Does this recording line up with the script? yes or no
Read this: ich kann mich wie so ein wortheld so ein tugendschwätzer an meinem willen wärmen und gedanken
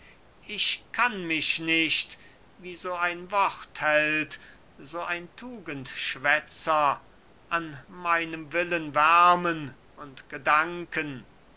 no